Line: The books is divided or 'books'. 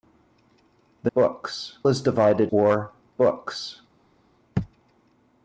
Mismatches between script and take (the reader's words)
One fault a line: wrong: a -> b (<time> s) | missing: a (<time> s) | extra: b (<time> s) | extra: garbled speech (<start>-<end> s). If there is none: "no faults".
no faults